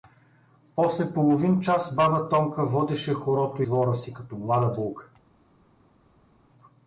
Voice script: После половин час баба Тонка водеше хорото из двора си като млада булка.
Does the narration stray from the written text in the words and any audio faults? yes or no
yes